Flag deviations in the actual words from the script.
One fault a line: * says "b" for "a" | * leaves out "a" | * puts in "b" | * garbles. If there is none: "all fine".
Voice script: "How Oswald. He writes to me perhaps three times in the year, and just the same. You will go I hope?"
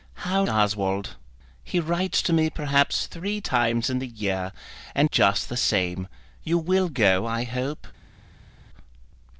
all fine